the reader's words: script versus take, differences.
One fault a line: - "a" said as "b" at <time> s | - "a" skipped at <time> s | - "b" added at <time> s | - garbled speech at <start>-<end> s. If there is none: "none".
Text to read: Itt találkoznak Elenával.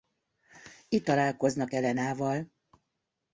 none